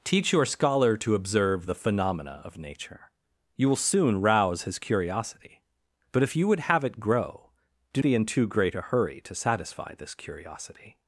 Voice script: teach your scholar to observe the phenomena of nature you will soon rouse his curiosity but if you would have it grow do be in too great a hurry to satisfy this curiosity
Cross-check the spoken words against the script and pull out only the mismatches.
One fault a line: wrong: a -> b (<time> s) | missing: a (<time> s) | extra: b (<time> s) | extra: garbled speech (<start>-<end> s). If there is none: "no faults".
no faults